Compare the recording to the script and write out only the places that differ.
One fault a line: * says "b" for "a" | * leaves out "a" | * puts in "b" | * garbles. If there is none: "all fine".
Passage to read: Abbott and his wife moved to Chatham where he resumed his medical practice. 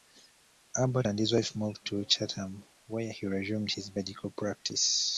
all fine